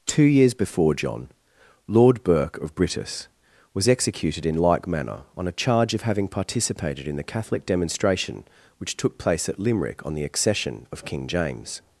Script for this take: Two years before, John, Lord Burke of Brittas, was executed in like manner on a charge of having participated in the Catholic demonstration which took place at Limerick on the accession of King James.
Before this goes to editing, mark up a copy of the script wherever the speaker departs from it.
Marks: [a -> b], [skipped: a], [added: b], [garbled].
Two years before, John, Lord Burke of Brittas, was executed in like manner on a charge of having participated in the Catholic demonstration which took place at Limerick on the accession of King James.